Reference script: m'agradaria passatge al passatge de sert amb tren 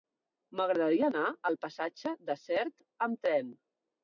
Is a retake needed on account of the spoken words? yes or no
yes